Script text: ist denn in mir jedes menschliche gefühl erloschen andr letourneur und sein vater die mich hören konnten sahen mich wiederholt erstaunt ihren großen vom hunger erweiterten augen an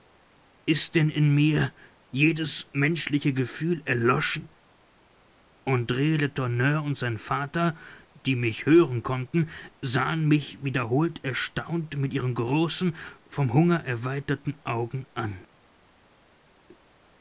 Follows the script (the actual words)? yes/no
no